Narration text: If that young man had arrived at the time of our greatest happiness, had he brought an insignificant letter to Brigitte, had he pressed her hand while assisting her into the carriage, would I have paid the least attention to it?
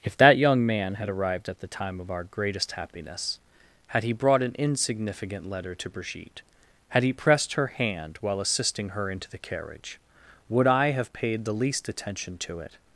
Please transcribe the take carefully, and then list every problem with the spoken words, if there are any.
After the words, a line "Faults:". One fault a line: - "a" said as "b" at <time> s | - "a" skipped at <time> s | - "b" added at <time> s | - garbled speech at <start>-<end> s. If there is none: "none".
If that young man had arrived at the time of our greatest happiness, had he brought an insignificant letter to Brigitte, had he pressed her hand while assisting her into the carriage, would I have paid the least attention to it?
Faults:
none